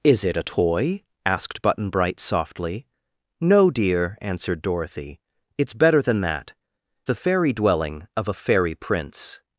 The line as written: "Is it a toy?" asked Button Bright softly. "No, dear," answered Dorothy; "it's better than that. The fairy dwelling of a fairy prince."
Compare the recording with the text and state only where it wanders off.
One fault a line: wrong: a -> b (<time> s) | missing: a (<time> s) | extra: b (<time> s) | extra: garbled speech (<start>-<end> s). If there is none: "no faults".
no faults